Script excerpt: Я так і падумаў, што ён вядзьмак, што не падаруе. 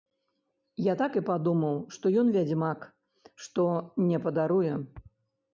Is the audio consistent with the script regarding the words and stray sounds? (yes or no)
yes